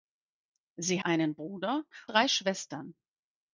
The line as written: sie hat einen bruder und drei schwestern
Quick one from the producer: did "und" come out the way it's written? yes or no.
no